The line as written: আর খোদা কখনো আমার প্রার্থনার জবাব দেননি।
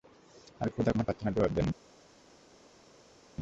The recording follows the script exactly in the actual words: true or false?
false